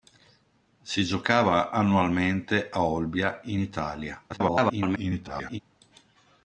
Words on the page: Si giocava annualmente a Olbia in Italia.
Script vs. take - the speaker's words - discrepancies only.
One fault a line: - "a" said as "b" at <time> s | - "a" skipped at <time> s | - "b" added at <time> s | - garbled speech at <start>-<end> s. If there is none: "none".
- garbled speech at 4.3-5.6 s